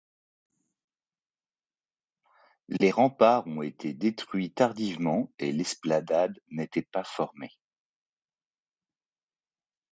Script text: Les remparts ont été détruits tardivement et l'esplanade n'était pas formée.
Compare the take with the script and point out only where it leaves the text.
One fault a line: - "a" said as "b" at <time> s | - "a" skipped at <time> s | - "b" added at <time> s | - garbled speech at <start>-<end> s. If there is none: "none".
none